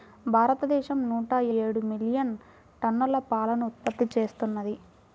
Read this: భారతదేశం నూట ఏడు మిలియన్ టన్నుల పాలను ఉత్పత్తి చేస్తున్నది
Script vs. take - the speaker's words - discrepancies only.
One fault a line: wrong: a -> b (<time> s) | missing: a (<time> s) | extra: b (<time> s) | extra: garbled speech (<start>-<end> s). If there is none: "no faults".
no faults